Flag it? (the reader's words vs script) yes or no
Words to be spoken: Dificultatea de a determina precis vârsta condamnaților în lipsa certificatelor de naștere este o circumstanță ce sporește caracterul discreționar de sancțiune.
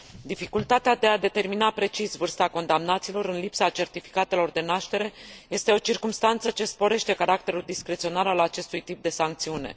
yes